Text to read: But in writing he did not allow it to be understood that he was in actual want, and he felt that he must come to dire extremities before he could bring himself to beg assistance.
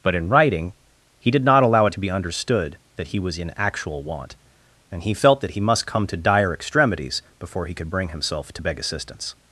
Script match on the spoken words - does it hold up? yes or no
yes